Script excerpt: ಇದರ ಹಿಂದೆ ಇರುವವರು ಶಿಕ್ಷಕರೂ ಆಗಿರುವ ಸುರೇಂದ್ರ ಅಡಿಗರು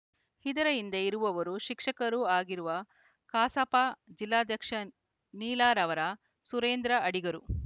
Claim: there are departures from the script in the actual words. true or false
true